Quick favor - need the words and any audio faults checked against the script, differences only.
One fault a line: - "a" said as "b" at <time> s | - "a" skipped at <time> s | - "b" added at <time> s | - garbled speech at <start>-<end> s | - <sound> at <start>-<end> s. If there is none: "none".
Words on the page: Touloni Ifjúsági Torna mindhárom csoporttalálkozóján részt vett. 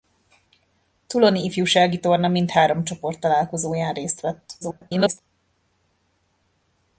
- garbled speech at 4.6-5.2 s